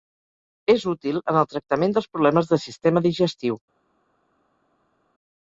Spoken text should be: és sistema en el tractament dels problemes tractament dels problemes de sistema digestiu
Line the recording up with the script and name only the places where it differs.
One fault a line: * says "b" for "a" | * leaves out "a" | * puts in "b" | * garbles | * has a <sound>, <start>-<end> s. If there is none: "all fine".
* says "útil" for "sistema"
* leaves out "tractament dels problemes"